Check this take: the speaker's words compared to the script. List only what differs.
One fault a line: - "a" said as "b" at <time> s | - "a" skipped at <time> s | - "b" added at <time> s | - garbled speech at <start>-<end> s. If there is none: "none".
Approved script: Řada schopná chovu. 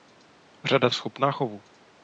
none